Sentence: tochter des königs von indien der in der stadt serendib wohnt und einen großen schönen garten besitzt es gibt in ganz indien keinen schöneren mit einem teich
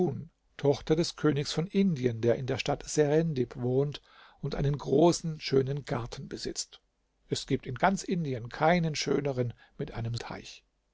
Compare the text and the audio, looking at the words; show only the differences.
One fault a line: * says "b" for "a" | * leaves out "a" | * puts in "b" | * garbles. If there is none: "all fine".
all fine